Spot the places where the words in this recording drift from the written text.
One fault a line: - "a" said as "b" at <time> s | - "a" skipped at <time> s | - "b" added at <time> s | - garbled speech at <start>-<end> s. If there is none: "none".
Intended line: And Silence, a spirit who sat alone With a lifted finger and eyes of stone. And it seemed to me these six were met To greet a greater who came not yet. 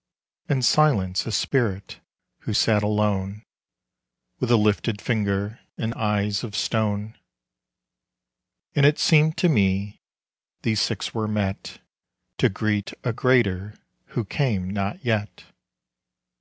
none